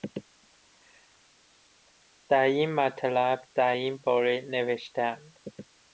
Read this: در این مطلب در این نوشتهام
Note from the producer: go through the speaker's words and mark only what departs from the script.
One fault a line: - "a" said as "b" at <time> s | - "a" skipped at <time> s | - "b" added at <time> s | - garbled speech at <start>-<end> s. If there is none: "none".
- "باره" added at 4.0 s